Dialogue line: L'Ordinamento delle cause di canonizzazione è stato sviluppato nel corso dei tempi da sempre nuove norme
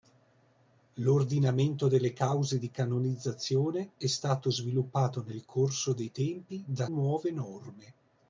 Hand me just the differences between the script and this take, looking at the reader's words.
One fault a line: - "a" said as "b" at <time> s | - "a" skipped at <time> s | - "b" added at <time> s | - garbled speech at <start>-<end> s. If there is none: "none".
- "sempre" skipped at 6.9 s